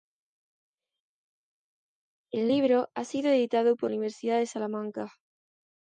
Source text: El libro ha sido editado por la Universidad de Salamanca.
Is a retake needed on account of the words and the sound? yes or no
yes